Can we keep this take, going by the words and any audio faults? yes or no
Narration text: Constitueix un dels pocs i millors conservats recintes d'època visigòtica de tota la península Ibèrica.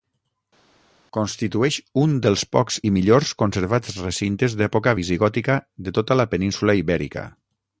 yes